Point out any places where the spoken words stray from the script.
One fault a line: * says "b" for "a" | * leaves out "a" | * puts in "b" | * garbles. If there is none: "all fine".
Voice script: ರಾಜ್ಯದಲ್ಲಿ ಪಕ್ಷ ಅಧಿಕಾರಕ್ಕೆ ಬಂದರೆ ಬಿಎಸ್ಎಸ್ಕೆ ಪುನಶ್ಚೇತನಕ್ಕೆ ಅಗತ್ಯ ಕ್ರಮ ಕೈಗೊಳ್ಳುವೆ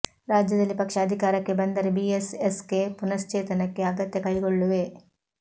* leaves out "ಕ್ರಮ"